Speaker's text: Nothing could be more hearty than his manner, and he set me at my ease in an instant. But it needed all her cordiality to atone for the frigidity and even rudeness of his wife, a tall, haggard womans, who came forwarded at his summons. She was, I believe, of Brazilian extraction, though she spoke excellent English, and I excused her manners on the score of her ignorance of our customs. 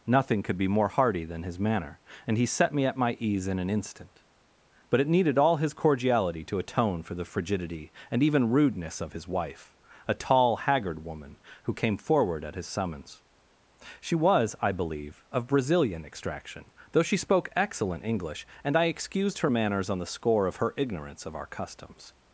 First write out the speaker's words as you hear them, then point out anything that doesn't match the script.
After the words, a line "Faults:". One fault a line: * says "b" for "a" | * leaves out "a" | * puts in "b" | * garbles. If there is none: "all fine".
Nothing could be more hearty than his manner, and he set me at my ease in an instant. But it needed all his cordiality to atone for the frigidity and even rudeness of his wife, a tall, haggard woman, who came forward at his summons. She was, I believe, of Brazilian extraction, though she spoke excellent English, and I excused her manners on the score of her ignorance of our customs.
Faults:
* says "his" for "her"
* says "woman" for "womans"
* says "forward" for "forwarded"